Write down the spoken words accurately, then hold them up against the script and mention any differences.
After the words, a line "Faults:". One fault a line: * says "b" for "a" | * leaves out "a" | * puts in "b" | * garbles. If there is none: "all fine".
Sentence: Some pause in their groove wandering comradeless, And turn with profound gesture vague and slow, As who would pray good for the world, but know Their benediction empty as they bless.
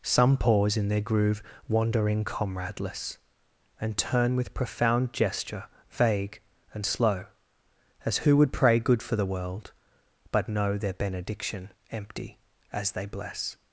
Some pause in their groove wandering comradeless, And turn with profound gesture vague and slow, As who would pray good for the world, but know Their benediction empty as they bless.
Faults:
all fine